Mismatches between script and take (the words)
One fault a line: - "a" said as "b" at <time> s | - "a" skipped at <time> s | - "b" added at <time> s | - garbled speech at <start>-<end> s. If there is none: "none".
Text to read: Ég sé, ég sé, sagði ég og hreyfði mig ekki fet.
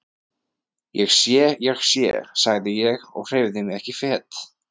none